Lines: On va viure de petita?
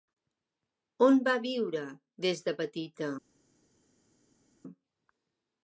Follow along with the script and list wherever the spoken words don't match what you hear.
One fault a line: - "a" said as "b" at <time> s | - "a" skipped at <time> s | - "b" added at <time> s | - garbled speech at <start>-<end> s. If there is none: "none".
- "des" added at 2.2 s